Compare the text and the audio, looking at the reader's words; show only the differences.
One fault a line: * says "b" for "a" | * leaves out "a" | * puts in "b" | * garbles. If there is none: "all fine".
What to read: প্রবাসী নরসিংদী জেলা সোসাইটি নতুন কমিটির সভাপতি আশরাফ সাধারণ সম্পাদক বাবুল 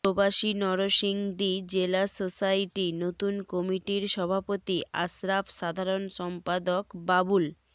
all fine